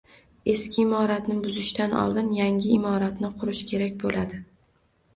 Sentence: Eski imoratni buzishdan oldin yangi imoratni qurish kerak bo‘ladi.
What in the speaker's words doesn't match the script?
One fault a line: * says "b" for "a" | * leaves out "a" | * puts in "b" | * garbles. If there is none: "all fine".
all fine